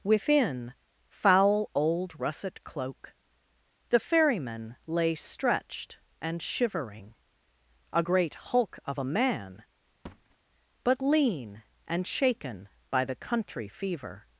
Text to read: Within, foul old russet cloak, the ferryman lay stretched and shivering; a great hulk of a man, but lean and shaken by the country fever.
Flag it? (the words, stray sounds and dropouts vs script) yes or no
yes